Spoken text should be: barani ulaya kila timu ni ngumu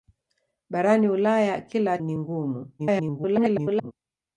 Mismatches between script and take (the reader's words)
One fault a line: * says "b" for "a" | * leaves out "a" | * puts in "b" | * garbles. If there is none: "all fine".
* leaves out "timu"
* garbles